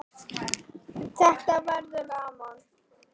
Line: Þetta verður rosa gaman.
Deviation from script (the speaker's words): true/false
true